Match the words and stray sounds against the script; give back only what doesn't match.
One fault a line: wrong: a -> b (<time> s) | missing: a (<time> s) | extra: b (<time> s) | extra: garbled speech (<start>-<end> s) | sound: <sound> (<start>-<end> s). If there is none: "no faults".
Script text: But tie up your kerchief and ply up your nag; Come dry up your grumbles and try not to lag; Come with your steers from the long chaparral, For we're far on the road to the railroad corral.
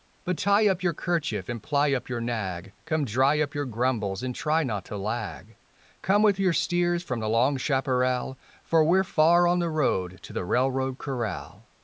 no faults